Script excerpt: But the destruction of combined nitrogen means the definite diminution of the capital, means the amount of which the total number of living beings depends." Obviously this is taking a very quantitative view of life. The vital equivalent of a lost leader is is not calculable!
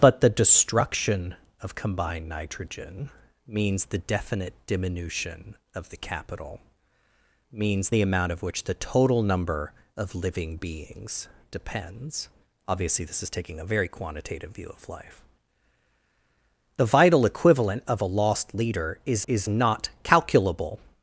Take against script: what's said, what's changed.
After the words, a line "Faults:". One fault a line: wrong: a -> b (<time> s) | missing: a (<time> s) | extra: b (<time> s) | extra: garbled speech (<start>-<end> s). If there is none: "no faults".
But the destruction of combined nitrogen means the definite diminution of the capital, means the amount of which the total number of living beings depends." Obviously this is taking a very quantitative view of life. The vital equivalent of a lost leader is is not calculable!
Faults:
no faults